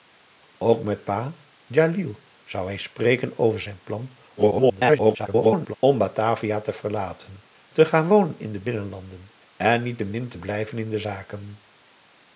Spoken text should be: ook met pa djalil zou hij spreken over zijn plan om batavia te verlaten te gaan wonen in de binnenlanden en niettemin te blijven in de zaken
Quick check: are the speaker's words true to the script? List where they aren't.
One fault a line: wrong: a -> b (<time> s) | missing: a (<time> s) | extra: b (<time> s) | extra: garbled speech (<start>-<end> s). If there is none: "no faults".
extra: garbled speech (4.4-5.8 s)